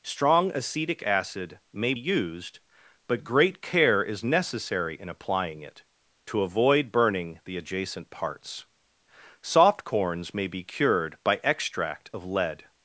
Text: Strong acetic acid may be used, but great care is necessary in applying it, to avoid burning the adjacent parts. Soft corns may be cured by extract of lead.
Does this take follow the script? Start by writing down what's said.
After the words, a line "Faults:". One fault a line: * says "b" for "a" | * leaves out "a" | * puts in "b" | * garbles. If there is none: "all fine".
Strong acetic acid may used, but great care is necessary in applying it, to avoid burning the adjacent parts. Soft corns may be cured by extract of lead.
Faults:
* leaves out "be"